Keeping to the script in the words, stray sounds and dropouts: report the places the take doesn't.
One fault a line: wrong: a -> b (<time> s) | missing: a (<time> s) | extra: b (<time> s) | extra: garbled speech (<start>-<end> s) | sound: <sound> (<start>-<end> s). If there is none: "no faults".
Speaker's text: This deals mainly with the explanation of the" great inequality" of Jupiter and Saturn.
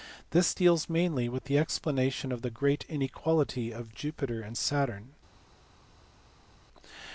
no faults